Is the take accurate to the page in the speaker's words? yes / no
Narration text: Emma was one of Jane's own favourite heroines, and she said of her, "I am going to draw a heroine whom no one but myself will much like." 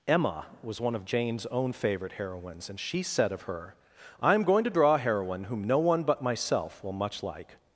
yes